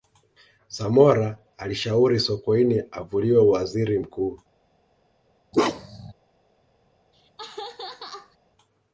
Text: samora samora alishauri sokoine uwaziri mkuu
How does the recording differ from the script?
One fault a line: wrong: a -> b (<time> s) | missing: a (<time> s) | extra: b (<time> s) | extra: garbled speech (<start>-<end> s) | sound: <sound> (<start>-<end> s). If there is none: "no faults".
missing: samora (1.4 s)
extra: avuliwe (2.9 s)
sound: bark (5.5-6.1 s)
sound: laugh (7.1-8.4 s)